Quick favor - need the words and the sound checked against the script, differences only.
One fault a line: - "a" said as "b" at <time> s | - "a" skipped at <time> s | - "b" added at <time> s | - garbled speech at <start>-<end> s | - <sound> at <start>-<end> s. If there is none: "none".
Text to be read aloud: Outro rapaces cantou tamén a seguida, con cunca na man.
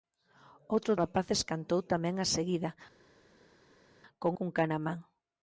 none